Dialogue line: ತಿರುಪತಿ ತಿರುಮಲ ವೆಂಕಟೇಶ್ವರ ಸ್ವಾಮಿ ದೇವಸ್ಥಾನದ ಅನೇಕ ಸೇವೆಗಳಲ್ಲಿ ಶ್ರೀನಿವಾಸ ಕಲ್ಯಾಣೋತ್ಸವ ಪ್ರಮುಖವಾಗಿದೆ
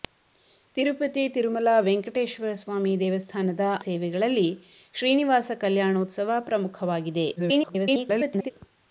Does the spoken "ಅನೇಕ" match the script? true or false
false